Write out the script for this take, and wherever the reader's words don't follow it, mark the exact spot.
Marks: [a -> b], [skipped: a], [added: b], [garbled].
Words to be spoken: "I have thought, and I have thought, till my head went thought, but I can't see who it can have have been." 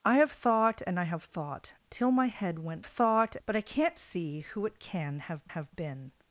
"I have thought, and I have thought, till my head went thought, but I can't see who it can have have been."